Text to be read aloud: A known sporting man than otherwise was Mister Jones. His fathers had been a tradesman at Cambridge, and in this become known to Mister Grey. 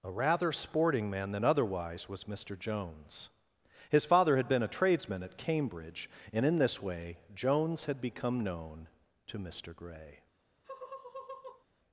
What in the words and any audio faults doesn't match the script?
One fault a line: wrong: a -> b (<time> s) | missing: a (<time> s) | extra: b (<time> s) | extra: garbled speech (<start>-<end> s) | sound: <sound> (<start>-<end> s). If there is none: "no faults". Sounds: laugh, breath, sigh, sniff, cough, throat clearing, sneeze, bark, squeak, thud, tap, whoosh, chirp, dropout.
wrong: known -> rather (0.1 s)
wrong: fathers -> father (4.0 s)
extra: way Jones had (6.8 s)
sound: laugh (10.6-11.7 s)